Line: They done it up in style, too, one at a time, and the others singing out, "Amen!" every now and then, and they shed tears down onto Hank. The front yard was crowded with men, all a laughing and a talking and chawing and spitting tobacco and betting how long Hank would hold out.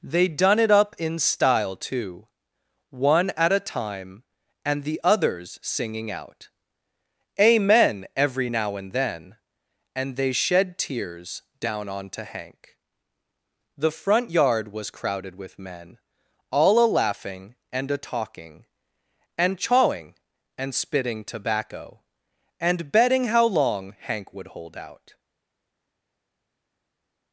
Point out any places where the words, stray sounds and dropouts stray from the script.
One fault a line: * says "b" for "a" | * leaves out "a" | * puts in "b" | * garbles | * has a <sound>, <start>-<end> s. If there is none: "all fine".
all fine